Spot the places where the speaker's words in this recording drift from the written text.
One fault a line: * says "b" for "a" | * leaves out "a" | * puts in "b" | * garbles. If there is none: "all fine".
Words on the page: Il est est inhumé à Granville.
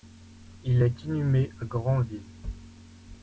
* leaves out "est"